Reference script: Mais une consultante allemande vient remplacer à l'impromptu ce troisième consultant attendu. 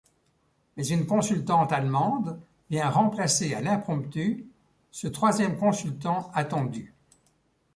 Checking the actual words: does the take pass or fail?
pass